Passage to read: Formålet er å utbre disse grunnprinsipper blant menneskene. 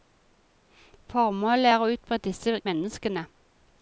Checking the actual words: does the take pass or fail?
fail